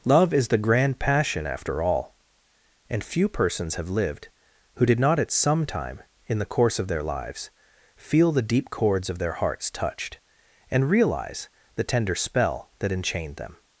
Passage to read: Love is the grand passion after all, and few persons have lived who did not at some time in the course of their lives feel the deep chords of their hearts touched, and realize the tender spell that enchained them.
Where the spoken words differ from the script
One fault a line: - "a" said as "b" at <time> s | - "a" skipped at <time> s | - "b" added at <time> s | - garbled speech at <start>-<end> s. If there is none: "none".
none